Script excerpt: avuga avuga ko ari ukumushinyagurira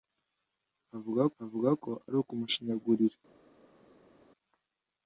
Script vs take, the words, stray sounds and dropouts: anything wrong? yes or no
no